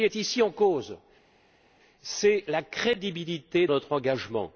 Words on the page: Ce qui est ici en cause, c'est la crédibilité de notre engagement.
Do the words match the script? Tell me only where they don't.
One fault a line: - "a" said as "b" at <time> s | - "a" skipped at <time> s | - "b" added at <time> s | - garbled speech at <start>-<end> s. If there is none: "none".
- "de" skipped at 3.7 s